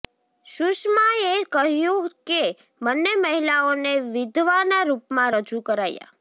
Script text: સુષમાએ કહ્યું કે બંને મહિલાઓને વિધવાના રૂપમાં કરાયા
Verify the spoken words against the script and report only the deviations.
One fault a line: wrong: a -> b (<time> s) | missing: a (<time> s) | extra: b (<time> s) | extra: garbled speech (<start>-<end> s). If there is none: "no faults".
extra: રજૂ (5.3 s)